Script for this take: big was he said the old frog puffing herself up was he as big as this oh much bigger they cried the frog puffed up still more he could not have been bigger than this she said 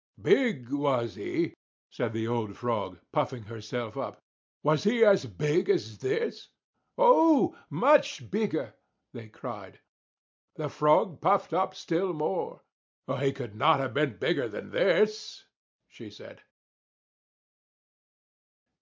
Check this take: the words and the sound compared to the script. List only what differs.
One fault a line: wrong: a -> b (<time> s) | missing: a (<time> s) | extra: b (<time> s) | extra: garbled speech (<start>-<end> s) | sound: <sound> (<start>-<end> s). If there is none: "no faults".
no faults